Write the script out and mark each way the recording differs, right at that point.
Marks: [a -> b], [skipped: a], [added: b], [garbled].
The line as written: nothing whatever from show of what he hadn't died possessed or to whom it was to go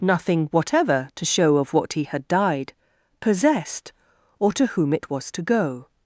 nothing whatever [from -> to] show of what he [hadn't -> had] died possessed or to whom it was to go